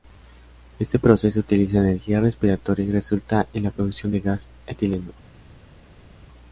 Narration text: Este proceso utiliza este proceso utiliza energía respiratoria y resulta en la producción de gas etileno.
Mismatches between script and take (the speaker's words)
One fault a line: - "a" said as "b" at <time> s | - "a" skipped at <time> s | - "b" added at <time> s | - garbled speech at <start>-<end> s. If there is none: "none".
- "este proceso utiliza" skipped at 1.8 s